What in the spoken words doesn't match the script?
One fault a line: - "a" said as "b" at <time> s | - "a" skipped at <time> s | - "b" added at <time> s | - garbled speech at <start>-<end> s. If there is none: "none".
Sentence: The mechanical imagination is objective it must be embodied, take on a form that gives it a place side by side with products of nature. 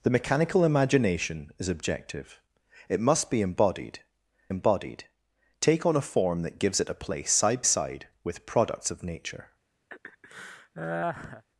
- "embodied" added at 4.5 s
- "by" skipped at 7.6 s